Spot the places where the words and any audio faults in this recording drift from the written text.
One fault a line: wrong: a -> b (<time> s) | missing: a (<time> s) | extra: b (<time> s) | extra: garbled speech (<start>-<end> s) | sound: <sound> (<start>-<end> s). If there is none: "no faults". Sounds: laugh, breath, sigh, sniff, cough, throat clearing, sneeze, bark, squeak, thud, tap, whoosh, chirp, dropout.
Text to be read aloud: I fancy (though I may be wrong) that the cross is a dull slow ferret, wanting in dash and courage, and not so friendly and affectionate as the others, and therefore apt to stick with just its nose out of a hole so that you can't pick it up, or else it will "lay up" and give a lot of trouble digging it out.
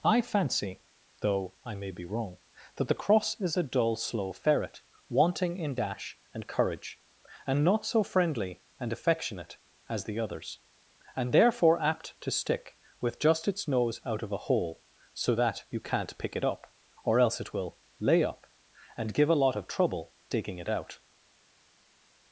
no faults